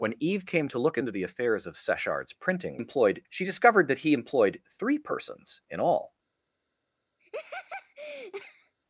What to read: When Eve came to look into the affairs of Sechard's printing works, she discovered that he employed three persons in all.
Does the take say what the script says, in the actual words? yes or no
no